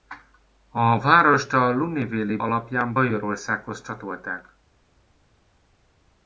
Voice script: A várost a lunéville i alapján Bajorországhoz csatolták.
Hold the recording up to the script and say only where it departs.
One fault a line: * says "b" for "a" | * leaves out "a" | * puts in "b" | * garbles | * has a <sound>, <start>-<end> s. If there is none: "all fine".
all fine